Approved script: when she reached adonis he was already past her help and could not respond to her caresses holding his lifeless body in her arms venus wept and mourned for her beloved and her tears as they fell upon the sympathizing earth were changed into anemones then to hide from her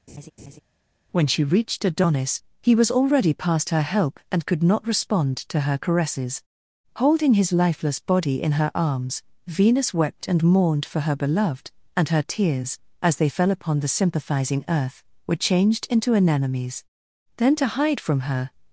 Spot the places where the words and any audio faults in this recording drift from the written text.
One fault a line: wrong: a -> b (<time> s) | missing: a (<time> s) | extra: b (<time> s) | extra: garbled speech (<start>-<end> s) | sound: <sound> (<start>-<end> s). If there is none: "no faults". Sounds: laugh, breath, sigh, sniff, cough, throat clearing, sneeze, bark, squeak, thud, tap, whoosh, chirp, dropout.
sound: laugh (0.1-0.6 s)